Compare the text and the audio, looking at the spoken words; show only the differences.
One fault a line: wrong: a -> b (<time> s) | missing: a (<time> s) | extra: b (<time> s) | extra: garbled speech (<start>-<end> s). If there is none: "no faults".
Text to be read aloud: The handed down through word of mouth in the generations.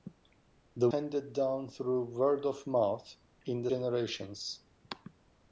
no faults